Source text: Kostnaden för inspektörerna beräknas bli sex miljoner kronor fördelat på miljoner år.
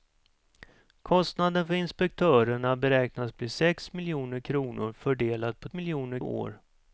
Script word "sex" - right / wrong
right